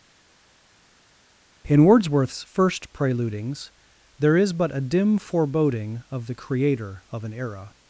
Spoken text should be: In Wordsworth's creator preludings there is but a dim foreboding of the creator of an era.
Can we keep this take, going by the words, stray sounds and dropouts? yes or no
no